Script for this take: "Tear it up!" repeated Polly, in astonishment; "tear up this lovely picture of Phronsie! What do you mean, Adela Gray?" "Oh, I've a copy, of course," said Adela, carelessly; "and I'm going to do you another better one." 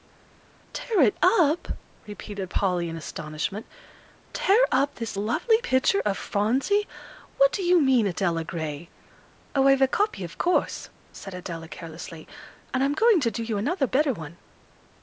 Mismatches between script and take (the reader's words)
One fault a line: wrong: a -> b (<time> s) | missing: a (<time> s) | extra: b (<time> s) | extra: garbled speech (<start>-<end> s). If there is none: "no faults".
no faults